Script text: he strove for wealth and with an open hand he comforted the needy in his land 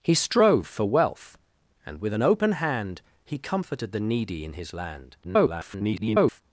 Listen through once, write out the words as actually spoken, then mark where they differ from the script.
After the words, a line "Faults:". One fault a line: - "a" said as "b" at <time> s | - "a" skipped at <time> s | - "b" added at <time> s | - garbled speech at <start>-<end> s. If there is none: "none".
he strove for wealth and with an open hand he comforted the needy in his land [garbled]
Faults:
- garbled speech at 5.2-6.4 s